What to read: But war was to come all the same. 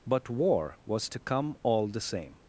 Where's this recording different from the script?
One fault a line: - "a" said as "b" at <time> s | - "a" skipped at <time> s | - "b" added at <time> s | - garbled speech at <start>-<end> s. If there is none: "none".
none